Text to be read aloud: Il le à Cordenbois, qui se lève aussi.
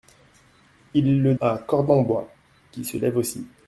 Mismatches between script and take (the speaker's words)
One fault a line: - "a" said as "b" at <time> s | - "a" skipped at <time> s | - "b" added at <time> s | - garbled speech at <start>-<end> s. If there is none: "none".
none